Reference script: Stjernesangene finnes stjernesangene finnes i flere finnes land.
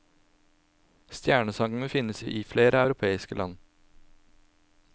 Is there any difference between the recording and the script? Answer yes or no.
yes